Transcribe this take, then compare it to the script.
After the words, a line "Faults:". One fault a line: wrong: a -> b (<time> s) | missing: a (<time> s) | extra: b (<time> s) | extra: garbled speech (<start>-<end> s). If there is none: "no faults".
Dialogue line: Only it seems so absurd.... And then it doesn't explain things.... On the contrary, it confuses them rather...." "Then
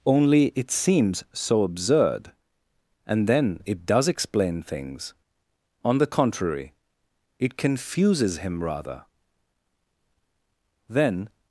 Only it seems so absurd.... And then it does explain things.... On the contrary, it confuses him rather...." "Then
Faults:
wrong: doesn't -> does (3.9 s)
wrong: them -> him (8.4 s)